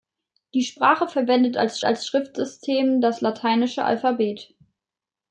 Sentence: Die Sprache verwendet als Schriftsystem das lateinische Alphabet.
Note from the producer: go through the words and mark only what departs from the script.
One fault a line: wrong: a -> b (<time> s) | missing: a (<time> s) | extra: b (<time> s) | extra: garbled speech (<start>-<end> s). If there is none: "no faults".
extra: als (1.8 s)